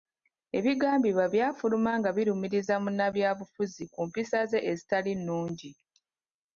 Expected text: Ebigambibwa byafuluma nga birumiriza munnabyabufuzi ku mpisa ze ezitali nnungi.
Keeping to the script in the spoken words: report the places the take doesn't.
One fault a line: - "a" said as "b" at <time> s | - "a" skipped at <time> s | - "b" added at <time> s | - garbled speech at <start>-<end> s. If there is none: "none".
none